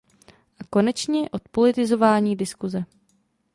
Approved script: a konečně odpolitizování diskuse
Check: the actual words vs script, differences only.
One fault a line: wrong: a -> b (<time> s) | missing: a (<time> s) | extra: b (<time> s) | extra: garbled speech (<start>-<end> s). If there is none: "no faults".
no faults